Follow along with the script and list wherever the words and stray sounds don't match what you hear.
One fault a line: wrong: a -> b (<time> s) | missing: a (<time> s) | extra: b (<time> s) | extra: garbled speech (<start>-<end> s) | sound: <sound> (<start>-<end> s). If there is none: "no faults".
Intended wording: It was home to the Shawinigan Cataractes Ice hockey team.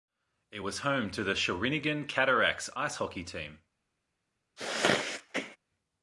sound: sneeze (4.6-5.6 s)